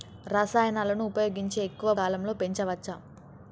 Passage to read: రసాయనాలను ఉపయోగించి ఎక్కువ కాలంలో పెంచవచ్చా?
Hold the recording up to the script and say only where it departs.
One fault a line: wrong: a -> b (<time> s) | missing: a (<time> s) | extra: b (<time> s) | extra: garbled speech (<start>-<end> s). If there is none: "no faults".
no faults